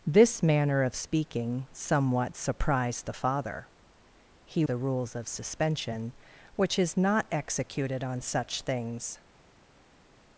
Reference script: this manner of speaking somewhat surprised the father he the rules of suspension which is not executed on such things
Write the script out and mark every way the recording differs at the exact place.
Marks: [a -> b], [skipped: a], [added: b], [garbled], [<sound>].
this manner of speaking somewhat surprised the father he the rules of suspension which is not executed on such things